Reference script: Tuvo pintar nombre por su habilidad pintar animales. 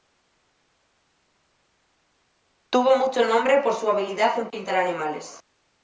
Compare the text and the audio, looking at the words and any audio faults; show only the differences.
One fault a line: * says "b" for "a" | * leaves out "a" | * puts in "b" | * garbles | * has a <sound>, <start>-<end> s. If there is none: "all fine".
* says "mucho" for "pintar"
* puts in "en"